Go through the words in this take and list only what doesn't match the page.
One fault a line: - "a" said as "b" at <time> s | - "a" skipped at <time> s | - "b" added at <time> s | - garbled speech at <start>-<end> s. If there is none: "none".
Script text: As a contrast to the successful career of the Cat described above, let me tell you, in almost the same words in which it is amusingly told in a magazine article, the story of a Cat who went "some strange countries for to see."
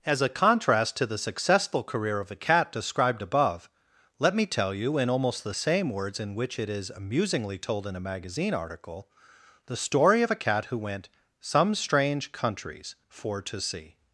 - "the" said as "a" at 2.3 s